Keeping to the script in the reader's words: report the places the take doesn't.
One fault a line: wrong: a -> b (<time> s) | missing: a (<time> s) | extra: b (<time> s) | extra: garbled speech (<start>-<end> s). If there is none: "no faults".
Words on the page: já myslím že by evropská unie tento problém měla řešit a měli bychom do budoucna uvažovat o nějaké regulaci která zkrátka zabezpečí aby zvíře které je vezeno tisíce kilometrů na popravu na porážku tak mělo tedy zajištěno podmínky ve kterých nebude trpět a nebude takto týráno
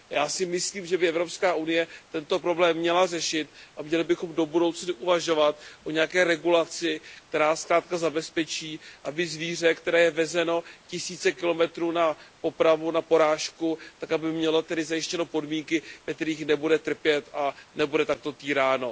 extra: si (0.3 s)
extra: aby (14.1 s)